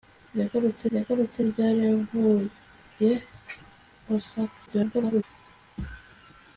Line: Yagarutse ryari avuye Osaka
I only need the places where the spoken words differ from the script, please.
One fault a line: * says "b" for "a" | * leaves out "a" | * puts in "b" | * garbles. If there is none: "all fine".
* puts in "yagarutse"
* garbles